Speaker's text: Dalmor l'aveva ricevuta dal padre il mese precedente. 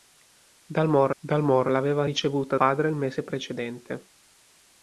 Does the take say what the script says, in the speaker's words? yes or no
no